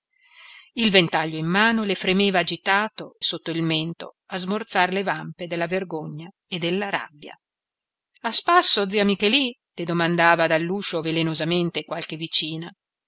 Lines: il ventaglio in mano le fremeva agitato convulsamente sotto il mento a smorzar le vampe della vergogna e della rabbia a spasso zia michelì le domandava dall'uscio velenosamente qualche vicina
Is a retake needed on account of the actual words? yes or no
yes